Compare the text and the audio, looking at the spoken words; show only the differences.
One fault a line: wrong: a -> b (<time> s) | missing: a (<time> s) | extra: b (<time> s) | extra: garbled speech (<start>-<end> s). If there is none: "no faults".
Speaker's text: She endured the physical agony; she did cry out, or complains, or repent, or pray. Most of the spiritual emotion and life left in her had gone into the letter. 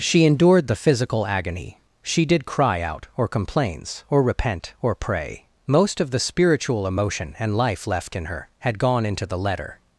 no faults